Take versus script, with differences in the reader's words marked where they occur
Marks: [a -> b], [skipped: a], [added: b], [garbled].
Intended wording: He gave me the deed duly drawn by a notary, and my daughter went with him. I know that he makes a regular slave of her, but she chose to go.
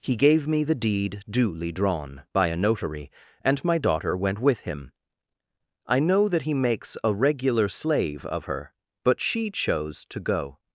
He gave me the deed duly drawn by a notary, and my daughter went with him. I know that he makes a regular slave of her, but she chose to go.